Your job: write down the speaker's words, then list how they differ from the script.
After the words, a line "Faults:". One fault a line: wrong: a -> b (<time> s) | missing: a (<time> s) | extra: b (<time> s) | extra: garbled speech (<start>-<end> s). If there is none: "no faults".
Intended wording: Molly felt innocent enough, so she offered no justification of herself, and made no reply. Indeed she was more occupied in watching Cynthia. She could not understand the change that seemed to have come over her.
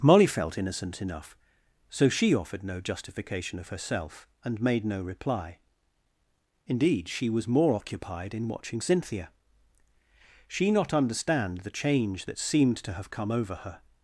Molly felt innocent enough, so she offered no justification of herself, and made no reply. Indeed she was more occupied in watching Cynthia. She not understand the change that seemed to have come over her.
Faults:
missing: could (10.7 s)